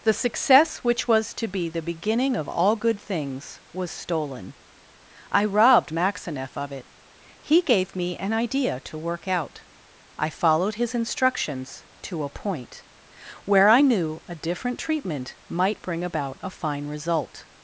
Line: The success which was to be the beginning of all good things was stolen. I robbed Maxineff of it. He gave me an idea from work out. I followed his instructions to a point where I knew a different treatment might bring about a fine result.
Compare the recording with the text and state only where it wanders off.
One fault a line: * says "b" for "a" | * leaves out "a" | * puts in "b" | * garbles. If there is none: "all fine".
* says "to" for "from"